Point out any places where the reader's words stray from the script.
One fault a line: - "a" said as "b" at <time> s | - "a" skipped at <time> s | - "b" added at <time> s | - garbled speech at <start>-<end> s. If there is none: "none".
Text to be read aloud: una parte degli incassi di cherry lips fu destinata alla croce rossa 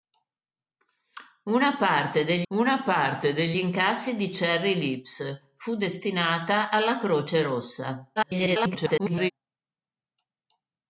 - "una parte degli" added at 2.5 s
- garbled speech at 8.2-9.3 s